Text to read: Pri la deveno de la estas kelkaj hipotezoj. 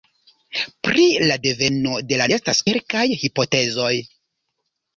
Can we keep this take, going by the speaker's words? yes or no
yes